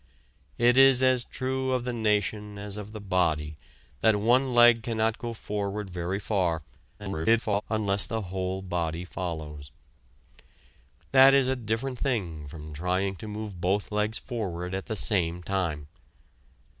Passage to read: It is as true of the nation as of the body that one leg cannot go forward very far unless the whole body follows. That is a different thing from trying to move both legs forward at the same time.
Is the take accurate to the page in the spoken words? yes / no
no